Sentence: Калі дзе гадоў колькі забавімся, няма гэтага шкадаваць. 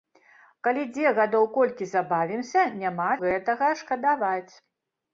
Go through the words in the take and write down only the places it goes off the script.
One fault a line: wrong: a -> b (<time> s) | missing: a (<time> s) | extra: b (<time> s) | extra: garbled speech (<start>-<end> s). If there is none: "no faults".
no faults